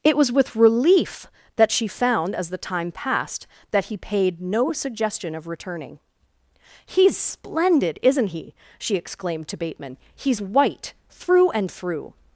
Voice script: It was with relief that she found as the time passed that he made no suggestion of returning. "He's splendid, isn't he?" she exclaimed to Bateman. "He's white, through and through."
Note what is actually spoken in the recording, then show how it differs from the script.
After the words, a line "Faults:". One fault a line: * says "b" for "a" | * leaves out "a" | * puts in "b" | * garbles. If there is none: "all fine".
It was with relief that she found as the time passed that he paid no suggestion of returning. "He's splendid, isn't he?" she exclaimed to Bateman. "He's white, through and through."
Faults:
* says "paid" for "made"